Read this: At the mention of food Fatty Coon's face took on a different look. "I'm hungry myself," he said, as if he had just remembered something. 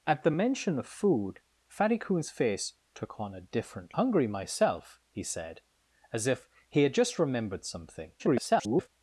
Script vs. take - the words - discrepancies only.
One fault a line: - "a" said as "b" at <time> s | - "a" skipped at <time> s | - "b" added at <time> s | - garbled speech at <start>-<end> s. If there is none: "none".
- "look I'm" skipped at 4.0 s
- garbled speech at 8.2-8.9 s